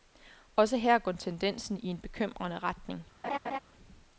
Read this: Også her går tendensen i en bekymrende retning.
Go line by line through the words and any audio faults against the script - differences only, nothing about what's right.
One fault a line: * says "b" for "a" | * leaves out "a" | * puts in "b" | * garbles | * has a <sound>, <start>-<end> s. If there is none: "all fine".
* has a laugh, 3.2-3.6 s